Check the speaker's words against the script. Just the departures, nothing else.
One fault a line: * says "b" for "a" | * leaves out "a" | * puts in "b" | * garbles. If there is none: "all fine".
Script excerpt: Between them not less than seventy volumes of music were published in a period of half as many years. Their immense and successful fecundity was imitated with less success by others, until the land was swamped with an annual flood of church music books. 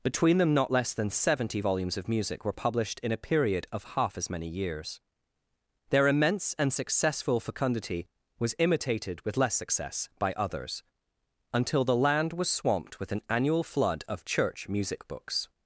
all fine